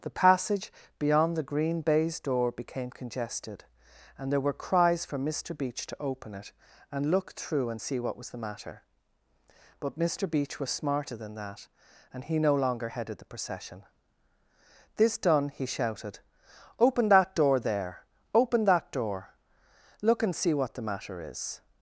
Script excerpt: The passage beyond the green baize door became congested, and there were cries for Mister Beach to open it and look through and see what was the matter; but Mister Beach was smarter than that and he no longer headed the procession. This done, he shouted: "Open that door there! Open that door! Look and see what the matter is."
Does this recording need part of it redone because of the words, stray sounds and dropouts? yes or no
no